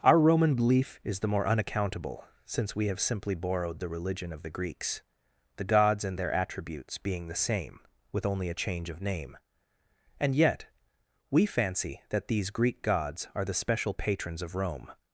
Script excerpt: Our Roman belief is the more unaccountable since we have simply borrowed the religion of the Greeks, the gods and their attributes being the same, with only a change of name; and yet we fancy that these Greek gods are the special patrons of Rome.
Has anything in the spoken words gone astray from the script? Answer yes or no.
no